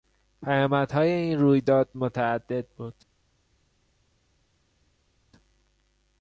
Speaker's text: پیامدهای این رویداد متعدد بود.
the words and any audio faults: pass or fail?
pass